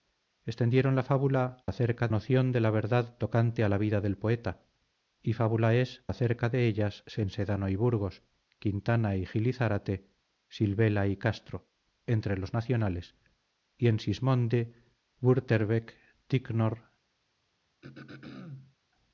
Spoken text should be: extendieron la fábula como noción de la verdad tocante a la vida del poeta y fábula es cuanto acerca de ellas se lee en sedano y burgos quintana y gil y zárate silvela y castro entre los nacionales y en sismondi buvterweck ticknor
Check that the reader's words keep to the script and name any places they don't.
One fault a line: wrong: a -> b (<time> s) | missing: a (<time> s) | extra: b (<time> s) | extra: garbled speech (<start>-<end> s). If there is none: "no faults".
wrong: como -> acerca (1.6 s)
missing: cuanto (6.0 s)
missing: lee (7.2 s)